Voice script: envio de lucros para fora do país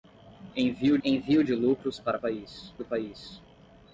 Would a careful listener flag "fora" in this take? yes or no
yes